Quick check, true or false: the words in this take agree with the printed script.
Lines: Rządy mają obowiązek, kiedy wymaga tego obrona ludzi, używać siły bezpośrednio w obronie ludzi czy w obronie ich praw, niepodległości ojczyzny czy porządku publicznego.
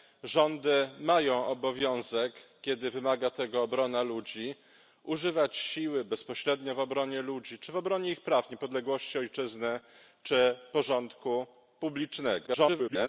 false